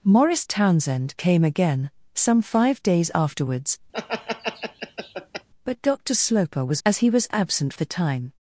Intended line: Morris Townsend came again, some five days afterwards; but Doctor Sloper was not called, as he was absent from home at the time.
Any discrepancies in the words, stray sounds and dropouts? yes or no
yes